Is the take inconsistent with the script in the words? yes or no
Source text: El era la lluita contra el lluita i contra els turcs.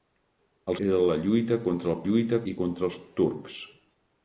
no